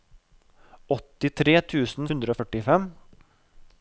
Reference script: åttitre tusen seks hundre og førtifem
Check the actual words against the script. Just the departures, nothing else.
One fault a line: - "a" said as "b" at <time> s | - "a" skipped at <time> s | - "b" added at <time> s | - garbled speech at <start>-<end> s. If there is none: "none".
- "seks" skipped at 2.1 s